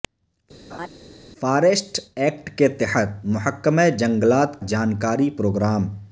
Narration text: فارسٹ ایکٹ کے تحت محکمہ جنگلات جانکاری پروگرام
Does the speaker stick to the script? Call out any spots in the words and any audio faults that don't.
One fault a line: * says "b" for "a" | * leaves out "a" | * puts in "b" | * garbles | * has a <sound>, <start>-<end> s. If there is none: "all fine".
* has a laugh, 0.7-0.9 s